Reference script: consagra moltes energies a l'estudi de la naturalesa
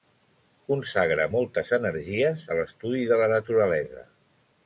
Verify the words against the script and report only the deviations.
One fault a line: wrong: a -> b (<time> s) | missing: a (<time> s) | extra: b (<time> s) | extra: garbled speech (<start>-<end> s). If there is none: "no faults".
no faults